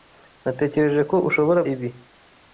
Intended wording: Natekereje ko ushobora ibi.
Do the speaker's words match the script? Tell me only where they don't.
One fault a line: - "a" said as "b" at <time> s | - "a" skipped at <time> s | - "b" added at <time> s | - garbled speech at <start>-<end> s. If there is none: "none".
none